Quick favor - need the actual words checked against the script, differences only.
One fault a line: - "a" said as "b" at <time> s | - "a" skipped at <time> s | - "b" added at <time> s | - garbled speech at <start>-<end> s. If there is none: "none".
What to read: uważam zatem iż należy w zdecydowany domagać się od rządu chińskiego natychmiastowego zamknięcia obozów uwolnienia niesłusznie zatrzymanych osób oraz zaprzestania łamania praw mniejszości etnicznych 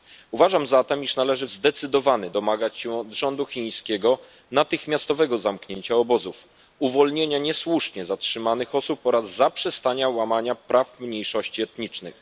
none